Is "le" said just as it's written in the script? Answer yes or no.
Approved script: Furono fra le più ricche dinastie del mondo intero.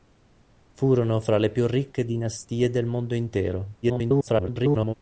yes